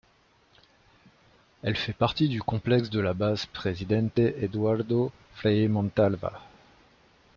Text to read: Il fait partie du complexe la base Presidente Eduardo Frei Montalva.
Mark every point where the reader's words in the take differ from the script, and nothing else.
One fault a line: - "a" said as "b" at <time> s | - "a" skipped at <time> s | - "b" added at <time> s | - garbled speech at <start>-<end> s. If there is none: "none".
- "Il" said as "Elle" at 1.6 s
- "de" added at 2.9 s